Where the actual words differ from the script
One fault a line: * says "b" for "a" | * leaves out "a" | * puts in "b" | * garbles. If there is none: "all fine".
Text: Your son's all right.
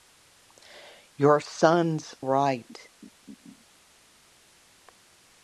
* leaves out "all"